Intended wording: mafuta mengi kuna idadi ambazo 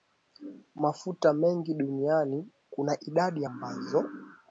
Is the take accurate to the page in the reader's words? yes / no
no